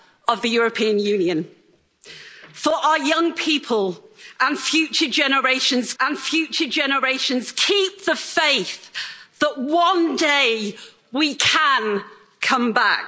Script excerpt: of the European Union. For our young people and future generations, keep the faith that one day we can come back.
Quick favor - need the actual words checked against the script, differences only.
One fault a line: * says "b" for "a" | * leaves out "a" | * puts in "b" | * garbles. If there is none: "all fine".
* puts in "and future generations"